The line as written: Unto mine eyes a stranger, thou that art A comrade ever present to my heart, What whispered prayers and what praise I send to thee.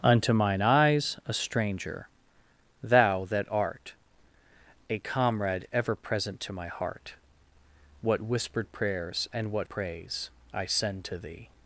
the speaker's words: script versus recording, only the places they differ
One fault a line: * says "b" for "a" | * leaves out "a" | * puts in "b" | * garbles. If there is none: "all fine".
all fine